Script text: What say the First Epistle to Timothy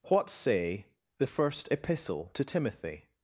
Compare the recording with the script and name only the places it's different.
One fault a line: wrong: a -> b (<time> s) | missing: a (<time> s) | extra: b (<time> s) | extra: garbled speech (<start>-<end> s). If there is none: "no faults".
no faults